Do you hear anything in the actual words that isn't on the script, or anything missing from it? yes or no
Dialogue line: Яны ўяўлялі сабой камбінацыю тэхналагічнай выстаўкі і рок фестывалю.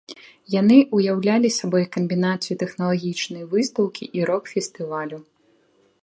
no